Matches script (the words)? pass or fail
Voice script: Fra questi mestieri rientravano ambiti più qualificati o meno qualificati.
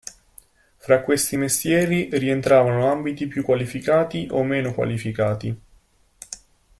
pass